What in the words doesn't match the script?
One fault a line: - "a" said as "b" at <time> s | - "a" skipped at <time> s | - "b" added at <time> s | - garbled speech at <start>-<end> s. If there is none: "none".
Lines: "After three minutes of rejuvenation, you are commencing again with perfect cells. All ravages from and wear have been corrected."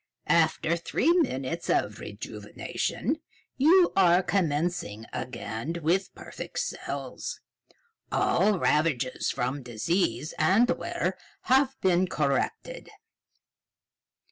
- "disease" added at 9.6 s